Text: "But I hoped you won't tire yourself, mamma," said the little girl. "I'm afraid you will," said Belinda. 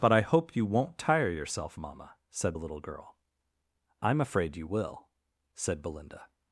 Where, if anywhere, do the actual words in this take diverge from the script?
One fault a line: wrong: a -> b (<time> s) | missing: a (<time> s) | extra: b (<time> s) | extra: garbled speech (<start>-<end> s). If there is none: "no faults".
wrong: hoped -> hope (0.2 s)